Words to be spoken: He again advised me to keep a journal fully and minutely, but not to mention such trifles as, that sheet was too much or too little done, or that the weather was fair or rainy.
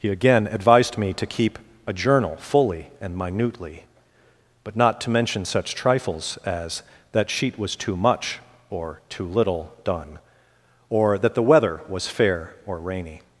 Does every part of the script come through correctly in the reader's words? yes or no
yes